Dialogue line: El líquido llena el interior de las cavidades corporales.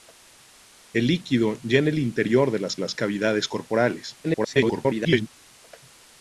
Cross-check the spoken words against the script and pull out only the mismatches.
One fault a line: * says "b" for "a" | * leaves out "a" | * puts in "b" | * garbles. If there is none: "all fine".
* puts in "las"
* garbles